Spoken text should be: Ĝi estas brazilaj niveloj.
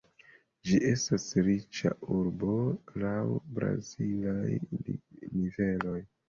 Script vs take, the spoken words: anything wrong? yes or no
yes